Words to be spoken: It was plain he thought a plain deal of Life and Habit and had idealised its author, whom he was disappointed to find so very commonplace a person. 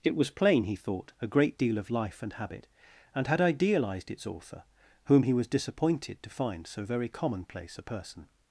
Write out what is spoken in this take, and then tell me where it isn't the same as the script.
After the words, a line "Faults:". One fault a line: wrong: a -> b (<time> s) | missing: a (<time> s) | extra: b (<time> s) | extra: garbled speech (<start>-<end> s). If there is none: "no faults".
It was plain he thought a great deal of Life and Habit and had idealised its author, whom he was disappointed to find so very commonplace a person.
Faults:
wrong: plain -> great (1.3 s)